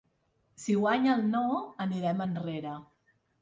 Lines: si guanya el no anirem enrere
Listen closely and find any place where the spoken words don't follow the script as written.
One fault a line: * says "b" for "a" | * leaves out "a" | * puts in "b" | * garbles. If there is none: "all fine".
all fine